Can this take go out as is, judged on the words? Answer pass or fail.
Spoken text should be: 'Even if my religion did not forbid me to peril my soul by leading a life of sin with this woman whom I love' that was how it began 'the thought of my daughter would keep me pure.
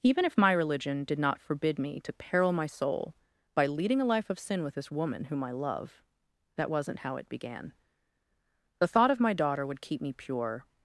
fail